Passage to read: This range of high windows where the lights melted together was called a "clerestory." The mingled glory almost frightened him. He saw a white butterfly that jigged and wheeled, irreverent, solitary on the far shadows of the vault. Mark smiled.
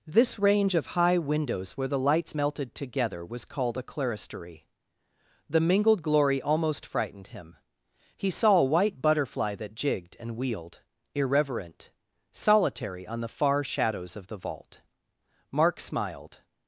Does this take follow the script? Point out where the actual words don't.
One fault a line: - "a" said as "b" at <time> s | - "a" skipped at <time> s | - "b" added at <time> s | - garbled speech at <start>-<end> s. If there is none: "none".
none